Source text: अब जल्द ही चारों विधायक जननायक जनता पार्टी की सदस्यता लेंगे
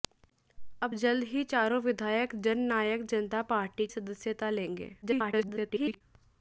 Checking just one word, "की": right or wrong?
wrong